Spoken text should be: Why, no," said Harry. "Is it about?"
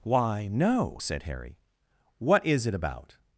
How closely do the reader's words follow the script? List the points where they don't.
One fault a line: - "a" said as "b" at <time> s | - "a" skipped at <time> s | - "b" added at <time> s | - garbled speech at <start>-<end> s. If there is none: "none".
- "What" added at 2.2 s